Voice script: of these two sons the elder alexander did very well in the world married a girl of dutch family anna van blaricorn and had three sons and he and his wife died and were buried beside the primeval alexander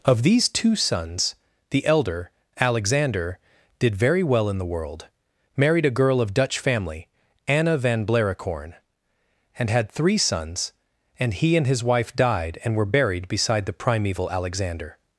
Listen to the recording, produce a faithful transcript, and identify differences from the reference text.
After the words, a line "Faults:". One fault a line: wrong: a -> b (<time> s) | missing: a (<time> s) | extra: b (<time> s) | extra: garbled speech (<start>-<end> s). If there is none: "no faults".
of these two sons the elder alexander did very well in the world married a girl of dutch family anna van blaricorn and had three sons and he and his wife died and were buried beside the primeval alexander
Faults:
no faults